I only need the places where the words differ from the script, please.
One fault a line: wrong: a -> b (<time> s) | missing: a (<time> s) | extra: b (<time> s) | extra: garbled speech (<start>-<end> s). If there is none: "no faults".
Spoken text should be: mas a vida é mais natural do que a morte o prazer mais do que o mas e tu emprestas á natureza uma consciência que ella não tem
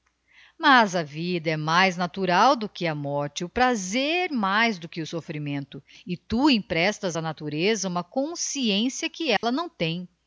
wrong: mas -> soffrimento (5.0 s)